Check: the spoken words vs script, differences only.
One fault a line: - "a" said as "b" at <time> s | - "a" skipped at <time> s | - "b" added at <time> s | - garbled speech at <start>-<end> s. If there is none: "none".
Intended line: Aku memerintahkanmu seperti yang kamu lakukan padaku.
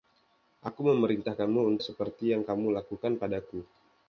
none